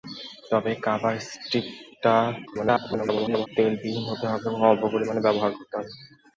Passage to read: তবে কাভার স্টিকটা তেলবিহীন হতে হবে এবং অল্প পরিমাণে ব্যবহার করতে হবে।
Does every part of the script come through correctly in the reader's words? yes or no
no